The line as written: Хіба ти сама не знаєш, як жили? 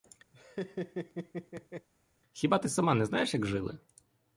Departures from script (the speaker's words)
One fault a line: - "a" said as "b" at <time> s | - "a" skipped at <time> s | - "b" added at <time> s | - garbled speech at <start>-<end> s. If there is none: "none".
none